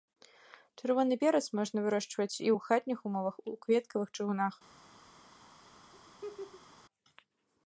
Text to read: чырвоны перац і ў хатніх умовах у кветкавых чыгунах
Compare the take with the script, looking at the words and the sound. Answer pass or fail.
fail